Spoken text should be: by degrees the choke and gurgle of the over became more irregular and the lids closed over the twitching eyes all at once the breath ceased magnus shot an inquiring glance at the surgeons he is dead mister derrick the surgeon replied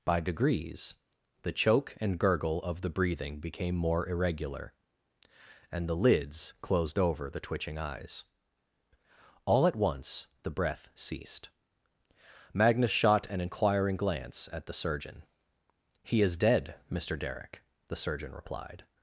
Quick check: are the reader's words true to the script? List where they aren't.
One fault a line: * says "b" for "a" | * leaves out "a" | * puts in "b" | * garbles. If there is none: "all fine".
* says "breathing" for "over"
* says "surgeon" for "surgeons"